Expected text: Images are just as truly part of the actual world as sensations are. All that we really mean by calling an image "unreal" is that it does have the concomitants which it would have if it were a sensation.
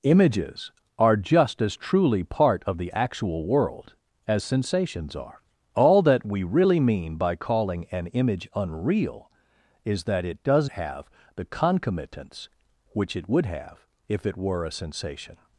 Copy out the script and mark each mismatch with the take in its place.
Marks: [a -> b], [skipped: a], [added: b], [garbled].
Images are just as truly part of the actual world as sensations are. All that we really mean by calling an image "unreal" is that it does have the concomitants which it would have if it were a sensation.